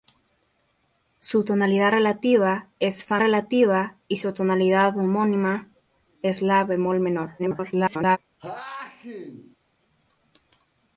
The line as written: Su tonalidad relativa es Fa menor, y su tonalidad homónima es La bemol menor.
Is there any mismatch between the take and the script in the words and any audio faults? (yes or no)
yes